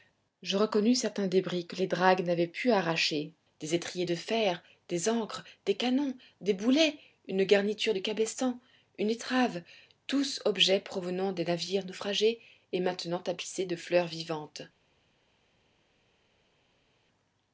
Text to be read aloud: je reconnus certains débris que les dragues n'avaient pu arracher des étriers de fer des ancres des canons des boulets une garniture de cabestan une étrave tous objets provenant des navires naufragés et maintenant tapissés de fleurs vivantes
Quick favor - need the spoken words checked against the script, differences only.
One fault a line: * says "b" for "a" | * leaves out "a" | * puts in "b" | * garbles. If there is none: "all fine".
all fine